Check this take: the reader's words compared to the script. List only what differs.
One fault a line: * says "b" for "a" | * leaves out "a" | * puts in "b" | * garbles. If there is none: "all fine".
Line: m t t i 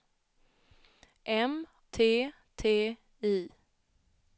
all fine